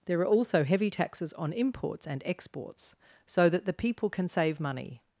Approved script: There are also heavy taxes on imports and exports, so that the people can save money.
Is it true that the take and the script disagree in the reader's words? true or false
false